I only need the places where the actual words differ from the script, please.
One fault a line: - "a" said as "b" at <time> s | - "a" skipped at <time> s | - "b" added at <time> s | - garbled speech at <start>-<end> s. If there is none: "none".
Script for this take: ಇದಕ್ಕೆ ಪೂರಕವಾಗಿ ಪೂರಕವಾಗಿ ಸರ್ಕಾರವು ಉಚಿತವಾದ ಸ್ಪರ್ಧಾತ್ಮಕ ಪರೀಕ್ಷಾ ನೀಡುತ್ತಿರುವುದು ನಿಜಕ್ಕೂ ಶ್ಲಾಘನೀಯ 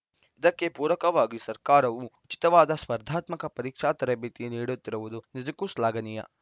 - "ಪೂರಕವಾಗಿ" skipped at 1.4 s
- "ತರಬೇತಿ" added at 3.9 s